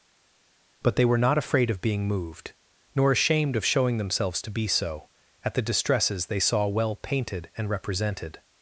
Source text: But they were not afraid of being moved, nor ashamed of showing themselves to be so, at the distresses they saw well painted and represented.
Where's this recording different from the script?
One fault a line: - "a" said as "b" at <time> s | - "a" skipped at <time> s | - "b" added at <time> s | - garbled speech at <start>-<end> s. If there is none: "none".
none